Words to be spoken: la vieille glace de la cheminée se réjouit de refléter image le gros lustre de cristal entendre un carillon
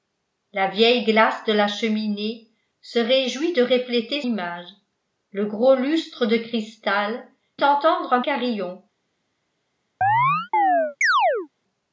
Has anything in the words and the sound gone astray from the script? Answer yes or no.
yes